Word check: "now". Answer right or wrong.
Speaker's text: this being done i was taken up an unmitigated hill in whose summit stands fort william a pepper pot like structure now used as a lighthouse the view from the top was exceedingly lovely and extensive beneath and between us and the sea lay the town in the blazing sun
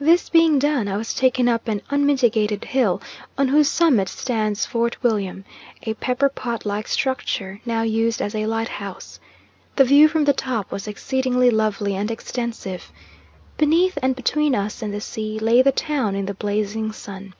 right